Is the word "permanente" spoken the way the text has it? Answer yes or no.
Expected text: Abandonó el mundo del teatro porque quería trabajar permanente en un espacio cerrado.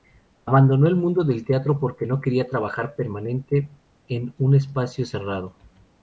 yes